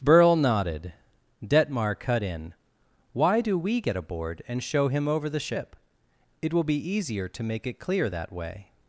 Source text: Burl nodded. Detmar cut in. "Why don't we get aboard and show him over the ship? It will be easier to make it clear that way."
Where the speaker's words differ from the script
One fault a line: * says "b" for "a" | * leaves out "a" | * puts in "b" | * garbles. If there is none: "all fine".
* says "do" for "don't"